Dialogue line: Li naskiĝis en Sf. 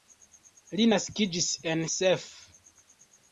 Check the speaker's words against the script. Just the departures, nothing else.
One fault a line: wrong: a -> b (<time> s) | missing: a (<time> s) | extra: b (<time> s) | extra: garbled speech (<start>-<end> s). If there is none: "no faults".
no faults